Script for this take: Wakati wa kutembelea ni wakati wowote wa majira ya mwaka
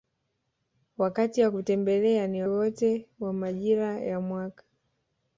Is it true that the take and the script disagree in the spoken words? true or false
true